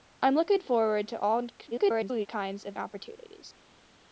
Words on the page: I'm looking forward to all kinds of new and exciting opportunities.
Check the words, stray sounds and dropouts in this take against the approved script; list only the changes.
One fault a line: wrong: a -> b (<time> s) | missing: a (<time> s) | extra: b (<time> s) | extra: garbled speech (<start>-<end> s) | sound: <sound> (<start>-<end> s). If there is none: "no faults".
extra: garbled speech (1.7-2.3 s)
missing: new and exciting (2.8 s)